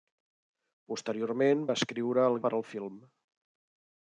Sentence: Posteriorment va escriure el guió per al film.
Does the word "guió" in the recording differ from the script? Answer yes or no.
yes